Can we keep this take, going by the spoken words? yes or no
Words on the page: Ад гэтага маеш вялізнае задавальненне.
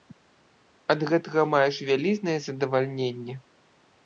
yes